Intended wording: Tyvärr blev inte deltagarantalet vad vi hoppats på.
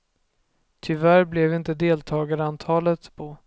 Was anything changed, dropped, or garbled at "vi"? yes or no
yes